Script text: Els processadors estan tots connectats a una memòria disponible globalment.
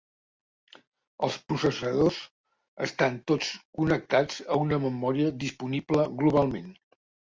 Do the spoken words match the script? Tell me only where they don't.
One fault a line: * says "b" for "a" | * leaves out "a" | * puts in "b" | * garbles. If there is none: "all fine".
all fine